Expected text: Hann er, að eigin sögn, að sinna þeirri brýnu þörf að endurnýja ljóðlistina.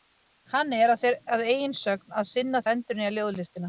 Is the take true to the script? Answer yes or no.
no